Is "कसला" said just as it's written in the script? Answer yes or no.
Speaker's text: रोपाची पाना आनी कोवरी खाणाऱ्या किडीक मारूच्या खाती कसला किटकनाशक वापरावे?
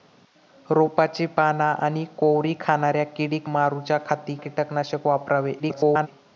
no